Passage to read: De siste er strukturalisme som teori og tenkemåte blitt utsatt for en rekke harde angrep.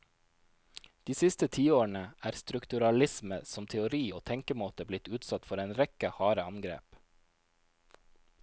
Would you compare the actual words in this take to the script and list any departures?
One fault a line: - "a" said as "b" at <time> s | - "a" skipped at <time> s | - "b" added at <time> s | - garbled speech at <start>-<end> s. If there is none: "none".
- "tiårene" added at 1.6 s